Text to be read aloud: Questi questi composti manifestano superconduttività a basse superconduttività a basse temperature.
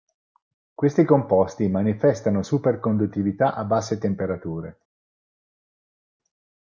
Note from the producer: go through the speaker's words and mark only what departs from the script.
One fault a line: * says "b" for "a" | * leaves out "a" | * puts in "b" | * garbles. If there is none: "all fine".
* leaves out "questi"
* leaves out "superconduttività a basse"